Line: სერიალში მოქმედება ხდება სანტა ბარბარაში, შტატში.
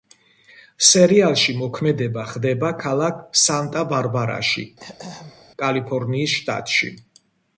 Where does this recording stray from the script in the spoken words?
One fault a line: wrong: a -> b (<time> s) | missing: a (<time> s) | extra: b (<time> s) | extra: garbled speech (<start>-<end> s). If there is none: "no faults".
extra: ქალაქ (2.9 s)
extra: კალიფორნიის (5.6 s)